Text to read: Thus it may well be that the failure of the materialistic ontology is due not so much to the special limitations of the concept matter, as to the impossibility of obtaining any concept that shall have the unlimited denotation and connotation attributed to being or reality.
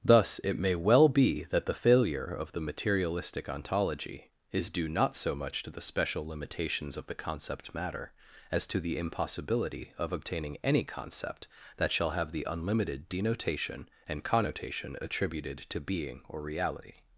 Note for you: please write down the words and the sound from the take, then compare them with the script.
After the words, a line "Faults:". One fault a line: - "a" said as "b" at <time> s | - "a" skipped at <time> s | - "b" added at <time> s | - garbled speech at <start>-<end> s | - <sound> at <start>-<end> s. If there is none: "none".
Thus it may well be that the failure of the materialistic ontology is due not so much to the special limitations of the concept matter, as to the impossibility of obtaining any concept that shall have the unlimited denotation and connotation attributed to being or reality.
Faults:
none